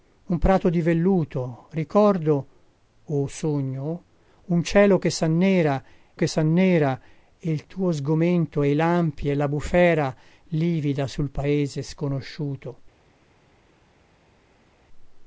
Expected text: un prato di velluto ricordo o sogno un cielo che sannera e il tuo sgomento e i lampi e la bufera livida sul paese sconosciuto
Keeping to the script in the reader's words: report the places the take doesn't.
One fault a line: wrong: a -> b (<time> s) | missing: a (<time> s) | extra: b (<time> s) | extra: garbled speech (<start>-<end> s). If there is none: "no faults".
extra: che sannera (6.1 s)